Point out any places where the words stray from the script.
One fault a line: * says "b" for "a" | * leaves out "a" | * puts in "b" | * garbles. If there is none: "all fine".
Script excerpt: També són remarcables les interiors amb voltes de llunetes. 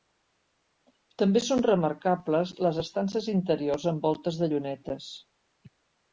* puts in "estances"